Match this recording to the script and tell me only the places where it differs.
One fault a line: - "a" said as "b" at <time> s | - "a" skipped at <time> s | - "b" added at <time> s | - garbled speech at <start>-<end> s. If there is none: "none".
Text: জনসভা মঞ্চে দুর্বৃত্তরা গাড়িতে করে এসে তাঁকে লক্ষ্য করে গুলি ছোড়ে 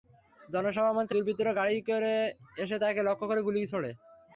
none